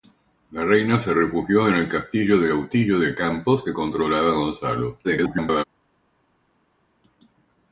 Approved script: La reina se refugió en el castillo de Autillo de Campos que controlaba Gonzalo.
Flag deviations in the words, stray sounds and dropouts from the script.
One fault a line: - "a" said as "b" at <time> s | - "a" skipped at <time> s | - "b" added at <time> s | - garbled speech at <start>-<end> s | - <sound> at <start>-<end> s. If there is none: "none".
- garbled speech at 5.0-5.6 s